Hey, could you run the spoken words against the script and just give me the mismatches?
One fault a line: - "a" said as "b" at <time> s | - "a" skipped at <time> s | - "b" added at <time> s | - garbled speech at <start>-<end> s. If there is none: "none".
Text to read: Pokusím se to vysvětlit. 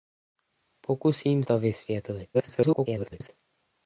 - "se" skipped at 1.4 s
- garbled speech at 2.3-3.3 s